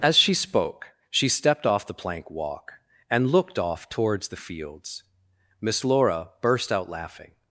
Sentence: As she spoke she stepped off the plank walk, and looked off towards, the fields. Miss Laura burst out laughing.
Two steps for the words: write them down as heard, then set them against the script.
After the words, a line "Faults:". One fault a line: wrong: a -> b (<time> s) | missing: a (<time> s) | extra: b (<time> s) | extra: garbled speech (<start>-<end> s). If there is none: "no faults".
As she spoke she stepped off the plank walk, and looked off towards, the fields. Miss Laura burst out laughing.
Faults:
no faults